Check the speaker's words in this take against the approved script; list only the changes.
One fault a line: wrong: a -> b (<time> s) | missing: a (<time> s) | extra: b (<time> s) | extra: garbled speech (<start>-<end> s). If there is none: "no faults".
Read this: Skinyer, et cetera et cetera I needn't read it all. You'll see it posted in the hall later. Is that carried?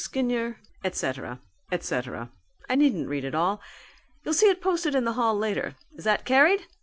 no faults